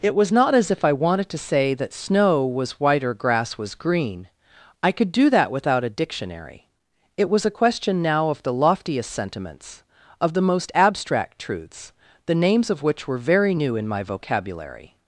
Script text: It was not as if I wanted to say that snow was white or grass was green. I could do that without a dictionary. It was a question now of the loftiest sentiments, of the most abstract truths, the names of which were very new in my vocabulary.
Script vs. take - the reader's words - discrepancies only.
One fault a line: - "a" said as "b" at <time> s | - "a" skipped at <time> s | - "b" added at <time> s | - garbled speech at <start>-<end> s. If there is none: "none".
none